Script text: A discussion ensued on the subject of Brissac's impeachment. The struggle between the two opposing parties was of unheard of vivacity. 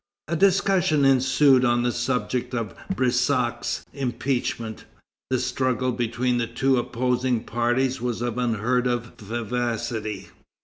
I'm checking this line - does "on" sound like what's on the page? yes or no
yes